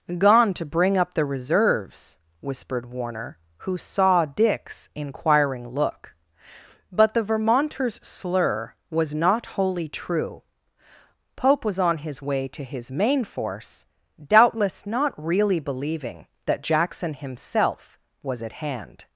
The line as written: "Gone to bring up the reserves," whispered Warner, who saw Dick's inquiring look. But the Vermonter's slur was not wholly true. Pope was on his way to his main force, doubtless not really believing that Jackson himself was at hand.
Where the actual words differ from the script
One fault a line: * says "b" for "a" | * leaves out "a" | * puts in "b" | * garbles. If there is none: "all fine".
all fine